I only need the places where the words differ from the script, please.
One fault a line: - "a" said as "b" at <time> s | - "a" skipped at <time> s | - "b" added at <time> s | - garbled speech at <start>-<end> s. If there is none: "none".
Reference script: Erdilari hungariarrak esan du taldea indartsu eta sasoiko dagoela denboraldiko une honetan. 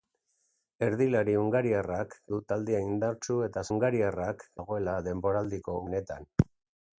- "esan" skipped at 2.2 s
- "sasoiko" said as "hungariarrak" at 3.7 s
- "une" skipped at 5.8 s